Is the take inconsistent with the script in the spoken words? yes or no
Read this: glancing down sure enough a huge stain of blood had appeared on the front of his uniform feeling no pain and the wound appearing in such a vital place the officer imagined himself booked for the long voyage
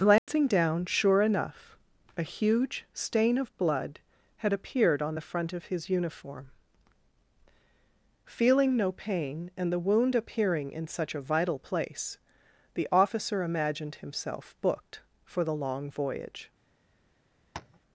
no